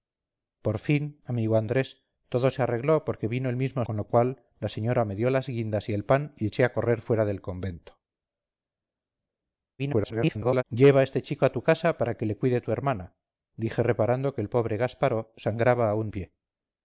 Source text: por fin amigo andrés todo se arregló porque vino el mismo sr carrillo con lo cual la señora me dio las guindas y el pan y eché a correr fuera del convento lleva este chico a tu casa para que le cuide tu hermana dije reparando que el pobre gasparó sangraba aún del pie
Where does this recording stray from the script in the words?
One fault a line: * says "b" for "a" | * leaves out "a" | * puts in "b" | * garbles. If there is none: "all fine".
* leaves out "sr carrillo"
* garbles
* leaves out "del"